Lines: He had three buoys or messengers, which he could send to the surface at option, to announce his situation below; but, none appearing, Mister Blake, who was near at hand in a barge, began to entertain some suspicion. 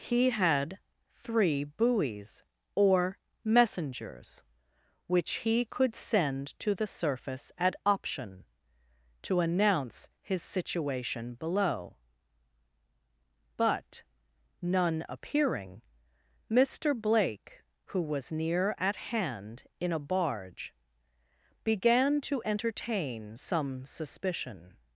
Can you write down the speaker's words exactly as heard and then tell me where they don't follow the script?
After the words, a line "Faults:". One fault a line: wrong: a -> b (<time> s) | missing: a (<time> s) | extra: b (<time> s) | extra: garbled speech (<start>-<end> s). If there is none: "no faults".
He had three buoys or messengers, which he could send to the surface at option, to announce his situation below; but, none appearing, Mister Blake, who was near at hand in a barge, began to entertain some suspicion.
Faults:
no faults